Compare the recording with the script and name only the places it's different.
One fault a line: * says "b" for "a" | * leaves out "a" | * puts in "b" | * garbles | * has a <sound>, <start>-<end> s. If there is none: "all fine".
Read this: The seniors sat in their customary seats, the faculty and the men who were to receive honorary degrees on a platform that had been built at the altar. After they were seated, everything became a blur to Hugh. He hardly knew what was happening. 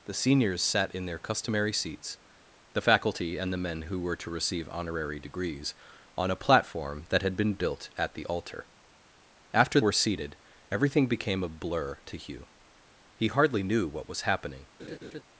* leaves out "they"
* has a laugh, 14.8-15.2 s